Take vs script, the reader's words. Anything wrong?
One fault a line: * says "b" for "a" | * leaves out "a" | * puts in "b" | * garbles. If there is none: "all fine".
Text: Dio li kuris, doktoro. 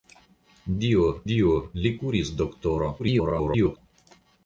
* puts in "dio"
* garbles